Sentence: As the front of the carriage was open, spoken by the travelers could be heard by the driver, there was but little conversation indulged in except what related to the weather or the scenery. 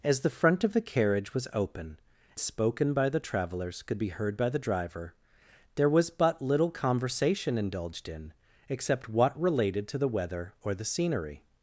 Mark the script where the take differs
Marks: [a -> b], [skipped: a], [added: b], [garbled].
As the front of the carriage was open, spoken by the travelers could be heard by the driver, there was but little conversation indulged in except what related to the weather or the scenery.